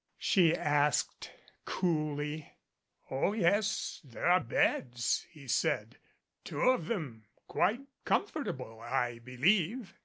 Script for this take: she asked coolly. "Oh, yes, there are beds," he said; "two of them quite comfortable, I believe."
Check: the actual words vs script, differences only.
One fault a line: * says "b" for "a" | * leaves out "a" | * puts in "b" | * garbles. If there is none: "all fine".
all fine